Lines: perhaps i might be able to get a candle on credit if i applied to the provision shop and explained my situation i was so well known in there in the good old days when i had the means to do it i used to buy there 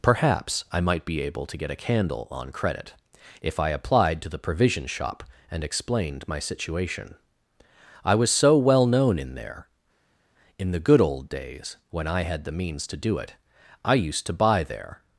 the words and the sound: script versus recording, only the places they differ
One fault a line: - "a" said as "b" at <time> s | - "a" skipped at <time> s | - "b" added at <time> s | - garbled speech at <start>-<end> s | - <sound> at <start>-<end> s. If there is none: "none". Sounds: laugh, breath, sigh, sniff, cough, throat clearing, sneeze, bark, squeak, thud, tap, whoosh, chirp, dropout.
none